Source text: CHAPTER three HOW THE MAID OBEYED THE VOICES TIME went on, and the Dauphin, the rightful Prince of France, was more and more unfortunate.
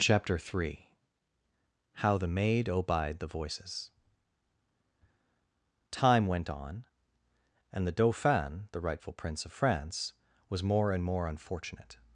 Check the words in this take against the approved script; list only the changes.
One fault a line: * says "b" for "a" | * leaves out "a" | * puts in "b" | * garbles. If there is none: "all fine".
all fine